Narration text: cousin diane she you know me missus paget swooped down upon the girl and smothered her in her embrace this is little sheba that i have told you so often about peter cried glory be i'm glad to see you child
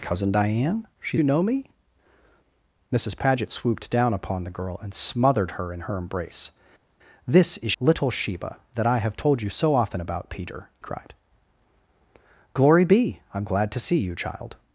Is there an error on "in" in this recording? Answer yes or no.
no